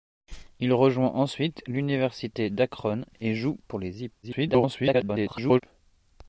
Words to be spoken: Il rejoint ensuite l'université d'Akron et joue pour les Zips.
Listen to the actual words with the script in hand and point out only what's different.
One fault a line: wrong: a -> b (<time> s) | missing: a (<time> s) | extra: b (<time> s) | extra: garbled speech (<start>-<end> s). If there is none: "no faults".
extra: garbled speech (4.2-5.6 s)